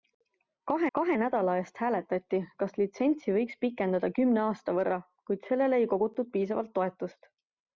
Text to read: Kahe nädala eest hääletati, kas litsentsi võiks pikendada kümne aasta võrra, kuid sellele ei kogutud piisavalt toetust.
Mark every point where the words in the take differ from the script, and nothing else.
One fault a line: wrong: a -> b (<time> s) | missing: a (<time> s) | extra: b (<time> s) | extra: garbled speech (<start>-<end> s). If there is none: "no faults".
extra: kahe (1.0 s)